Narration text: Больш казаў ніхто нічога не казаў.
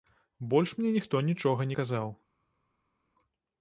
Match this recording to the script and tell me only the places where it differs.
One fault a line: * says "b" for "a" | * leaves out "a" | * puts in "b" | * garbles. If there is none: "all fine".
* says "мне" for "казаў"